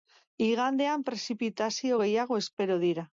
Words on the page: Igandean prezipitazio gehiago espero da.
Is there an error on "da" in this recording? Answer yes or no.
yes